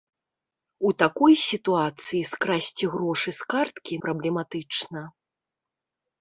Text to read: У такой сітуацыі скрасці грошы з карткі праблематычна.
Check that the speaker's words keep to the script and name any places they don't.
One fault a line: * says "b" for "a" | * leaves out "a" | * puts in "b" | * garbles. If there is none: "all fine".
all fine